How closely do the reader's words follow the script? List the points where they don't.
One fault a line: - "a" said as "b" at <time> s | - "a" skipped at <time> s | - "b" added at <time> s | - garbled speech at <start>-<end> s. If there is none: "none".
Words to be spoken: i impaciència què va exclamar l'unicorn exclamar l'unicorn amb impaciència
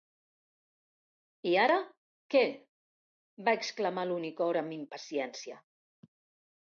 - "impaciència" said as "ara" at 1.6 s
- "exclamar l'unicorn" skipped at 4.6 s